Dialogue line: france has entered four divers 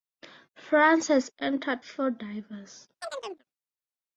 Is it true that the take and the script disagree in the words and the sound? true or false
true